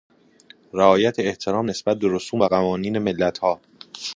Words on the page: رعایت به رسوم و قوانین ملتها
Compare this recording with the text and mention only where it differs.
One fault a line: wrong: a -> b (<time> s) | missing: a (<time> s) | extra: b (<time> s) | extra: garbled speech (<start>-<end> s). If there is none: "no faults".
extra: احترام نسبت (1.2 s)